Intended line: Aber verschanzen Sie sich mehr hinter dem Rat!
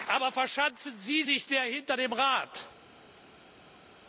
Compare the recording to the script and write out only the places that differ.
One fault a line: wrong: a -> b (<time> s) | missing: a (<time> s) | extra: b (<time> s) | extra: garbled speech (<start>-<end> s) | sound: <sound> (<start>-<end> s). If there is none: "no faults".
no faults